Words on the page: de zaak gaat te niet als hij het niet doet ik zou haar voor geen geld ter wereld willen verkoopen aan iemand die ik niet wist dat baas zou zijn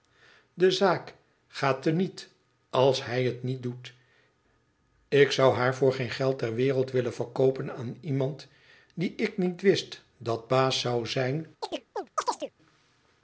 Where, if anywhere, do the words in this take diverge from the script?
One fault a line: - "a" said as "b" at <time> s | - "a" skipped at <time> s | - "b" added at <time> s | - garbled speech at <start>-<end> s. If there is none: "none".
none